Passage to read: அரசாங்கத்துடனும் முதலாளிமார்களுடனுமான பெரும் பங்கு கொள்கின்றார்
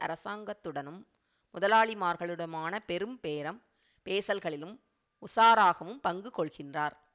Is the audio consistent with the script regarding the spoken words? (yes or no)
no